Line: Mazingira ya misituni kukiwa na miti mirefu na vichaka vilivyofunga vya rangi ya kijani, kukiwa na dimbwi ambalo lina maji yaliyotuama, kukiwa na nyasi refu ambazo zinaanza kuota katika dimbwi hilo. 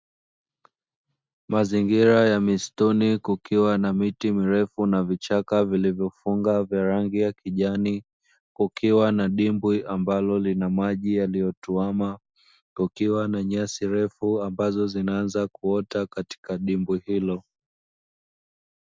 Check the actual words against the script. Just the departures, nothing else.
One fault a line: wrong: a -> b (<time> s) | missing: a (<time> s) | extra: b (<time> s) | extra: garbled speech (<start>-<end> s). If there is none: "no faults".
no faults